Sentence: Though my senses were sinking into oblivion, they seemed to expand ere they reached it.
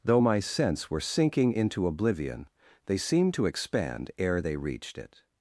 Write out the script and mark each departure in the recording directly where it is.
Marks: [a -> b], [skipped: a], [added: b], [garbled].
Though my [senses -> sense] were sinking into oblivion, they seemed to expand ere they reached it.